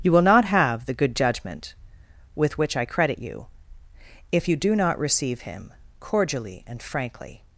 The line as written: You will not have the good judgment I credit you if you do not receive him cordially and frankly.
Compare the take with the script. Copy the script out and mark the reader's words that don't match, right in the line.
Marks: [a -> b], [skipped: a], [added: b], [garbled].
You will not have the good judgment [added: with which] I credit you if you do not receive him cordially and frankly.